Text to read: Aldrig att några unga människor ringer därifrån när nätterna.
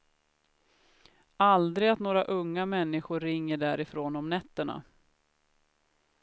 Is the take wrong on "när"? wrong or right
wrong